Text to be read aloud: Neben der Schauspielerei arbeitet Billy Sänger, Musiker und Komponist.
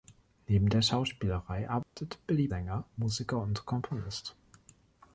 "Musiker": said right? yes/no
yes